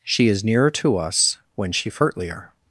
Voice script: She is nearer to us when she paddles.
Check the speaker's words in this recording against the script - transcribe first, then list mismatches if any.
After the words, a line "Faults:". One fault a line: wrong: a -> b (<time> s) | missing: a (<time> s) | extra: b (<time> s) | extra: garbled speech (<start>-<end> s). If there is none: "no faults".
She is nearer to us when she furtlier.
Faults:
wrong: paddles -> furtlier (1.9 s)